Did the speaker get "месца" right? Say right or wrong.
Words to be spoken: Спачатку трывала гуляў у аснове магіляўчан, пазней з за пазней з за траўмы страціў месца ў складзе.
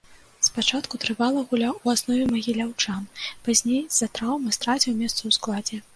right